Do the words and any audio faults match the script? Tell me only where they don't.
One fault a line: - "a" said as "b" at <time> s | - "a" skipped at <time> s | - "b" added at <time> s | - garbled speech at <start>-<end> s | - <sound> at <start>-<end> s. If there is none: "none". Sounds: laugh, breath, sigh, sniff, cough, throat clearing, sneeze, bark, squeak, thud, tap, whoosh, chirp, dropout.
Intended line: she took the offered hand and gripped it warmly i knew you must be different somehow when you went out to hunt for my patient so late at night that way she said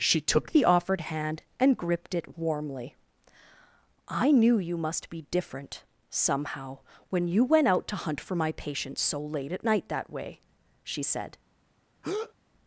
- breath at 12.0-12.3 s